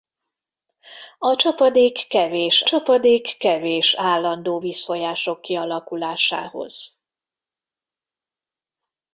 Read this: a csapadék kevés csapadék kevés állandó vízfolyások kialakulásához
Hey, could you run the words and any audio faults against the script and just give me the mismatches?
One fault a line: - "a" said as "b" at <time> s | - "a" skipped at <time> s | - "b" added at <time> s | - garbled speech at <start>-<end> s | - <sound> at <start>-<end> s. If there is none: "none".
none